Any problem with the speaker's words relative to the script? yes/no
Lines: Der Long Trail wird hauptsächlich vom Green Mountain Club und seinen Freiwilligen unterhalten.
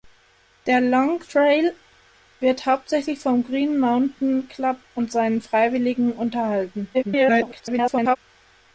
yes